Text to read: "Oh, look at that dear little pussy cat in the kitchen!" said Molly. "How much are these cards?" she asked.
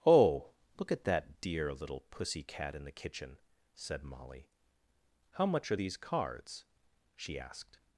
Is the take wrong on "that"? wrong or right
right